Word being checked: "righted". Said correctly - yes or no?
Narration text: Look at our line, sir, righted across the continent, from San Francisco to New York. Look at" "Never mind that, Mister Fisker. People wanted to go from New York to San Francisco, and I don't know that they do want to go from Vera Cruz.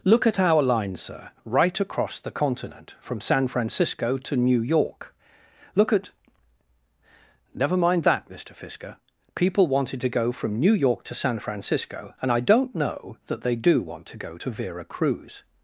no